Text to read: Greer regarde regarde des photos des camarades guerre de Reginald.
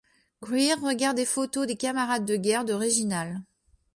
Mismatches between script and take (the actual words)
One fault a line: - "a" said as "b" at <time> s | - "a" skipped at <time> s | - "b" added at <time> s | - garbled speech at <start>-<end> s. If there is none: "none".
- "regarde" skipped at 1.2 s
- "de" added at 2.2 s